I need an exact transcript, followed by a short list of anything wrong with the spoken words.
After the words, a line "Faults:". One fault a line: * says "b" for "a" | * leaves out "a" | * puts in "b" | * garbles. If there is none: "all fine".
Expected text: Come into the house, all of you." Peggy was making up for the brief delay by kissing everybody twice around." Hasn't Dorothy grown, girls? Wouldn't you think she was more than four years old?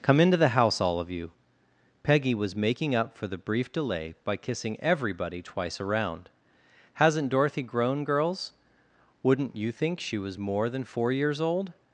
Come into the house, all of you." Peggy was making up for the brief delay by kissing everybody twice around." Hasn't Dorothy grown, girls? Wouldn't you think she was more than four years old?
Faults:
all fine